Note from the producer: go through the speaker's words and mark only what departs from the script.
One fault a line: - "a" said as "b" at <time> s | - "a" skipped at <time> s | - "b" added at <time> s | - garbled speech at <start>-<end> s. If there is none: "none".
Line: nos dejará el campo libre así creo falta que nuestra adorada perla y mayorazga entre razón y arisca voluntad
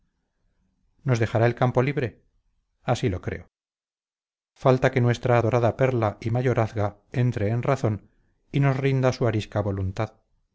- "lo" added at 3.1 s
- "en" added at 7.5 s
- "nos rinda su" added at 8.6 s